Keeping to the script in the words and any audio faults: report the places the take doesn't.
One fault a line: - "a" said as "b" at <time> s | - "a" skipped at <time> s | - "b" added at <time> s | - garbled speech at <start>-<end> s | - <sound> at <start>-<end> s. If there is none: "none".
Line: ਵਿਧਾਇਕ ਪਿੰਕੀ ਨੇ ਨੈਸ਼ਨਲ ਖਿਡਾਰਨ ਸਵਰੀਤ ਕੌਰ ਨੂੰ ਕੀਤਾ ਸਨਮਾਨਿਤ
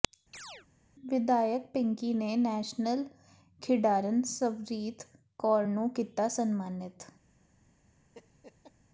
- chirp at 0.3-0.7 s
- laugh at 8.1-8.7 s